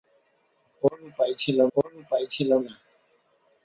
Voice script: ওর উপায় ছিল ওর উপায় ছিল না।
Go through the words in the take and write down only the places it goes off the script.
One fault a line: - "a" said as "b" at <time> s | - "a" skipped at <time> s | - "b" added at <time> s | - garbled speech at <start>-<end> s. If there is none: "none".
none